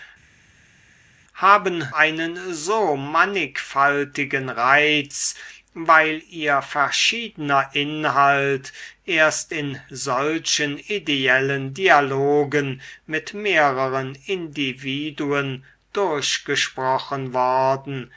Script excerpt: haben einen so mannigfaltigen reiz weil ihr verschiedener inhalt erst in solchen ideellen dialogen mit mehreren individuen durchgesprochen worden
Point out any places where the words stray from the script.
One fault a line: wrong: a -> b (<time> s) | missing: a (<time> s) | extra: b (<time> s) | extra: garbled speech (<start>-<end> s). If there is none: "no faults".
no faults